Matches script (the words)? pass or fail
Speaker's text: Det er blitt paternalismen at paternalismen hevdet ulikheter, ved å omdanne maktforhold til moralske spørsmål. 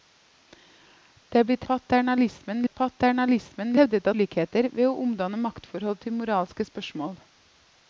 pass